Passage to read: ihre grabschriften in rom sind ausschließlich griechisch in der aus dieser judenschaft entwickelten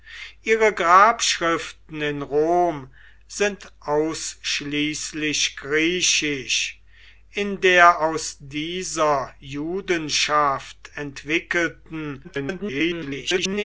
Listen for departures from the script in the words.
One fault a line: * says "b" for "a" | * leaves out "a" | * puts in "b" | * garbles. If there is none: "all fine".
* garbles